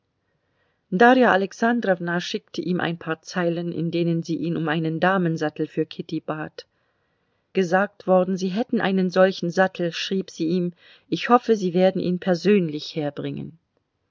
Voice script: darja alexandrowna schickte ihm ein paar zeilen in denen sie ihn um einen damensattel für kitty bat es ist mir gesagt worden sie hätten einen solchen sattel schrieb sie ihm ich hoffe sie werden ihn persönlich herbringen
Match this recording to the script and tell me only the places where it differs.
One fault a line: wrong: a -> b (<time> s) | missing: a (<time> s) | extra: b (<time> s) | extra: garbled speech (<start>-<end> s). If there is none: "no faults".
missing: es ist mir (6.7 s)